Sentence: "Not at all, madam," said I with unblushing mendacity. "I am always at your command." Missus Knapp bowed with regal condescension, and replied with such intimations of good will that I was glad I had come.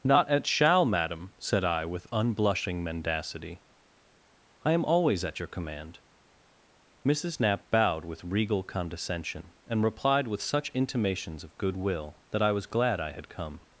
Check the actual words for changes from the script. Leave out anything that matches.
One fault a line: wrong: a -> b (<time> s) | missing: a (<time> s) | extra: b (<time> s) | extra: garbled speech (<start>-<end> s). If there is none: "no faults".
wrong: all -> shall (0.5 s)